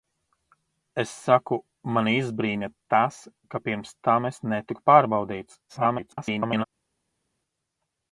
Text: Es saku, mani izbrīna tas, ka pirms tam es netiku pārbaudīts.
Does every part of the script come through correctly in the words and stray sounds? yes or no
no